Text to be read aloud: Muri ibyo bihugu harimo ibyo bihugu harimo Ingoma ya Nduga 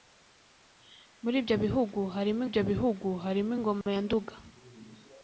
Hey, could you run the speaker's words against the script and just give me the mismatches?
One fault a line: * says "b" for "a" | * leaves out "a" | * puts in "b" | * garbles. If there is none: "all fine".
all fine